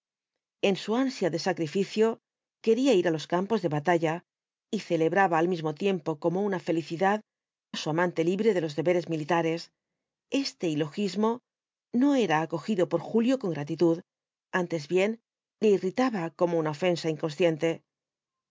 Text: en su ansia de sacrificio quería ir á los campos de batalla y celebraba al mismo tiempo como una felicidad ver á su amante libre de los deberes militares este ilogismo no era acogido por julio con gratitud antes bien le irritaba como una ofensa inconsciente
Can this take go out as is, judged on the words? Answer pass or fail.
fail